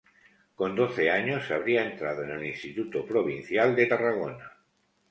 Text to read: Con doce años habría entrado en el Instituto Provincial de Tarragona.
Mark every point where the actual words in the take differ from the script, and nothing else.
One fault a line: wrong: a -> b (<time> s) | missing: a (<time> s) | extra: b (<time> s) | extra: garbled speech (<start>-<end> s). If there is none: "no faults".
no faults